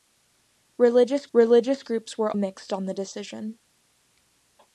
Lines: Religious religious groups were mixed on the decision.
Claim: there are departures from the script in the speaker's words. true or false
false